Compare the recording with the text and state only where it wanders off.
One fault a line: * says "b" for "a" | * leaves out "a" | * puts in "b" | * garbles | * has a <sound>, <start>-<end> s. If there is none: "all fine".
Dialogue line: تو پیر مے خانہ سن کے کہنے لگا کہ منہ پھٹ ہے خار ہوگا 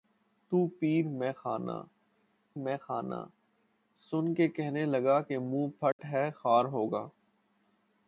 * puts in "مے خانہ"
* has a dropout, 5.9-6.0 s